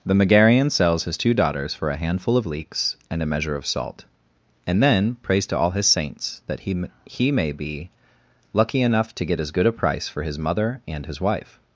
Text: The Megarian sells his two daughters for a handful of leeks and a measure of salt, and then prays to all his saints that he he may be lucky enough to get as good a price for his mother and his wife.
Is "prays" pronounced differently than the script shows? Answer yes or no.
no